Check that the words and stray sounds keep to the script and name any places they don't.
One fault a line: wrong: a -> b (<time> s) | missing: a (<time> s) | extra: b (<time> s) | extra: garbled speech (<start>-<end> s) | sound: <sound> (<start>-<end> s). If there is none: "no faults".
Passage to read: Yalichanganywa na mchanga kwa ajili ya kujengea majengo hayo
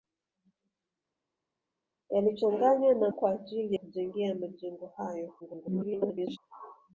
missing: mchanga (3.1 s)
missing: ya (3.8 s)
extra: garbled speech (5.4-6.4 s)